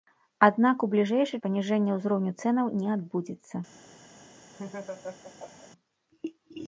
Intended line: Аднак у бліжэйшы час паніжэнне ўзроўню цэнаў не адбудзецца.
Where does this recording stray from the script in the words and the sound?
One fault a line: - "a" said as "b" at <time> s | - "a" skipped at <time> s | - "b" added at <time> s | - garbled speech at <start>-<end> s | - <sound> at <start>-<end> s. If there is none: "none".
- "час" skipped at 1.4 s
- laugh at 4.5-5.7 s